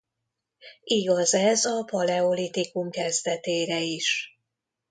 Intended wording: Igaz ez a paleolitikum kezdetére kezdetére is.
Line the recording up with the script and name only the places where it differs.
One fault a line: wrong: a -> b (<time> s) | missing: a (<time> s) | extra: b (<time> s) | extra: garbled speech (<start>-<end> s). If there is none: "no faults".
missing: kezdetére (3.8 s)